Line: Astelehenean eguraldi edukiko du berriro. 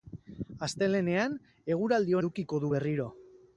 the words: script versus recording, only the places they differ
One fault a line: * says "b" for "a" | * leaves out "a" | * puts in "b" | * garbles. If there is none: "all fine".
all fine